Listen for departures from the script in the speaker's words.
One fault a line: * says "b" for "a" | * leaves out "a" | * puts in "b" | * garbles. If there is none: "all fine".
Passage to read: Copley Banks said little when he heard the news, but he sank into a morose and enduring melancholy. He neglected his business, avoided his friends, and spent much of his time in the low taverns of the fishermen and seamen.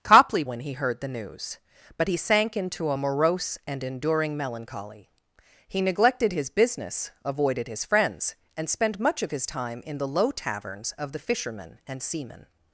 * leaves out "Banks said little"